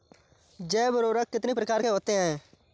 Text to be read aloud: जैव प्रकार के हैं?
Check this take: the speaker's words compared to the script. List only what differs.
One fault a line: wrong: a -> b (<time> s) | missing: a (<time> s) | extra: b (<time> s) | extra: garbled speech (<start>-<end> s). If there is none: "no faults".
extra: उर्वरक कितनी (1.0 s)
extra: होते (1.9 s)